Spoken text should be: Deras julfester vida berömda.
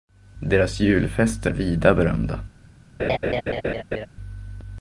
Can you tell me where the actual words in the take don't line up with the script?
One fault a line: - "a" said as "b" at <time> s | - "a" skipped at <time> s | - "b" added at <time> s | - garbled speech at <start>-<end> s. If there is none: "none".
none